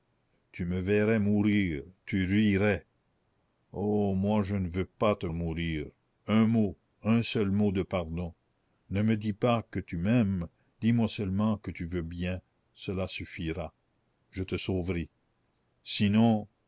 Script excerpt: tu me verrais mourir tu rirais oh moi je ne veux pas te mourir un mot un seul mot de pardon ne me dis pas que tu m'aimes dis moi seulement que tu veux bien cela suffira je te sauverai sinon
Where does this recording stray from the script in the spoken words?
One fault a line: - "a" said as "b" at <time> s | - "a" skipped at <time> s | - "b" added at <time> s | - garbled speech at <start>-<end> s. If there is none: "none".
none